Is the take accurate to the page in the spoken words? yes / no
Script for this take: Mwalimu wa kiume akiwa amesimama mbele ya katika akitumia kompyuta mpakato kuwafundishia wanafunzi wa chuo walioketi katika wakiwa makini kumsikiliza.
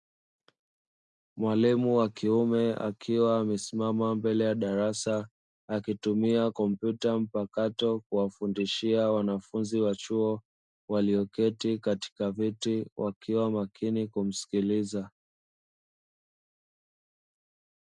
no